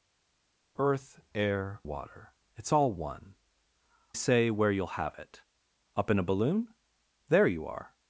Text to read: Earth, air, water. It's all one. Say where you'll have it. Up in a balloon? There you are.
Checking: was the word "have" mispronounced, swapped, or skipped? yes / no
no